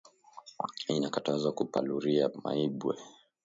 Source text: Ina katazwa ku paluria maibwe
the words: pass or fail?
pass